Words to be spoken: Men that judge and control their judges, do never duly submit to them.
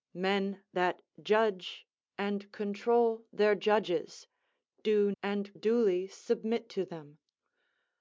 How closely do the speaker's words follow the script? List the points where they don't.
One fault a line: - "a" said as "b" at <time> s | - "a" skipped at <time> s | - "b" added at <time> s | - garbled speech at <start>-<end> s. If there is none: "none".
- "never" said as "and" at 5.2 s